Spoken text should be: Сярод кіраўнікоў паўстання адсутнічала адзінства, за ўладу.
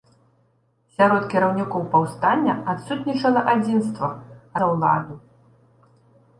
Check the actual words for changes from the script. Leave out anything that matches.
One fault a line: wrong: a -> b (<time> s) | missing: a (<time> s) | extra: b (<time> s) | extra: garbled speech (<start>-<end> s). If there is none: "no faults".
no faults